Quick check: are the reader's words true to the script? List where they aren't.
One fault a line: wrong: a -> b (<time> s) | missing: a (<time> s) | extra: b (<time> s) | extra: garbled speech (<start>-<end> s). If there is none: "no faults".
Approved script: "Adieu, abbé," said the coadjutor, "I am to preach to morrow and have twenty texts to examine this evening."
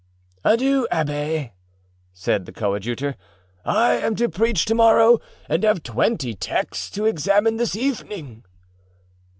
no faults